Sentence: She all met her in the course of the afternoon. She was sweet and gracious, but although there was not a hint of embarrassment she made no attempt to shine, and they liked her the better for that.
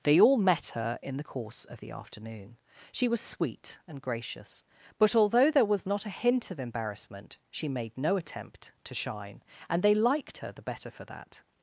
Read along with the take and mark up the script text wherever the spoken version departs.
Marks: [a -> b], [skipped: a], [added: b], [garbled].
[She -> They] all met her in the course of the afternoon. She was sweet and gracious, but although there was not a hint of embarrassment she made no attempt to shine, and they liked her the better for that.